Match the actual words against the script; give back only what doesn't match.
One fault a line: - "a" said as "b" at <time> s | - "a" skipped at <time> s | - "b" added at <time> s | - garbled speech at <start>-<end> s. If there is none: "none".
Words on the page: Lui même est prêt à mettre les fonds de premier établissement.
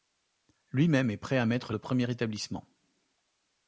- "les fonds" skipped at 1.7 s